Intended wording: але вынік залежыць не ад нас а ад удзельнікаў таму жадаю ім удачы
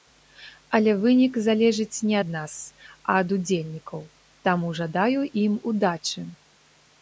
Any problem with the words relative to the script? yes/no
no